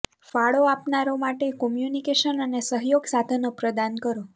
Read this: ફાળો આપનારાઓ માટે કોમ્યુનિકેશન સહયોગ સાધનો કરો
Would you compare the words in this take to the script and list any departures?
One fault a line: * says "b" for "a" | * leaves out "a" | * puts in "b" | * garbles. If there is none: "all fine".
* puts in "અને"
* puts in "પ્રદાન"